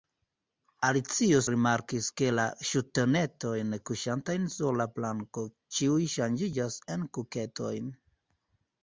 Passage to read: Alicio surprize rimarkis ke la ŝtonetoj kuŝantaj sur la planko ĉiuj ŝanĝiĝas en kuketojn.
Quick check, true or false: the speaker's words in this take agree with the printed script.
false